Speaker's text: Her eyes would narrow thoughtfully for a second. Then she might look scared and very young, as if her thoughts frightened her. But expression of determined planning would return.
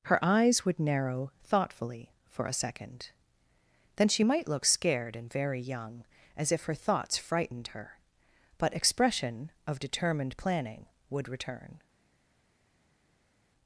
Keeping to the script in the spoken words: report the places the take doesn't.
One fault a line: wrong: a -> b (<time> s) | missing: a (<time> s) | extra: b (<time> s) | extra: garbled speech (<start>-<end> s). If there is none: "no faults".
no faults